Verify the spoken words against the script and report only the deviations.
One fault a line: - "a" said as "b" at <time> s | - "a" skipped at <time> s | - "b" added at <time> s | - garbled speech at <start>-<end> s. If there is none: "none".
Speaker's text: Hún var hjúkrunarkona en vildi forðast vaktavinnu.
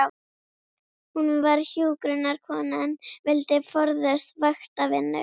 none